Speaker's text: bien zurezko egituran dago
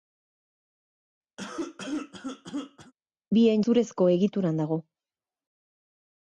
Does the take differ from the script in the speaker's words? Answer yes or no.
no